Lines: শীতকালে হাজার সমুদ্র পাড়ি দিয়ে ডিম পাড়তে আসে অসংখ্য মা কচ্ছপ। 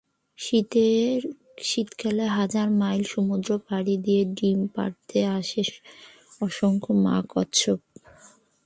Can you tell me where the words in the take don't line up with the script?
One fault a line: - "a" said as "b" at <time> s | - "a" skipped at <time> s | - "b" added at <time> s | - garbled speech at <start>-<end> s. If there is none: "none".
- "মাইল" added at 2.8 s